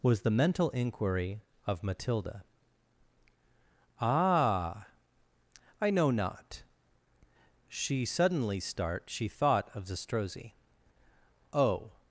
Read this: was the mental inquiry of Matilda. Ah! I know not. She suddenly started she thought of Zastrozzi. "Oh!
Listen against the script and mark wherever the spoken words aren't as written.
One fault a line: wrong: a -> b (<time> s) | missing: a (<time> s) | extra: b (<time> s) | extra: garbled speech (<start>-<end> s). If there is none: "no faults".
wrong: started -> start (8.6 s)